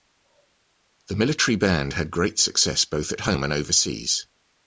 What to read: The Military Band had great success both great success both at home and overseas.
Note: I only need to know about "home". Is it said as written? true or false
true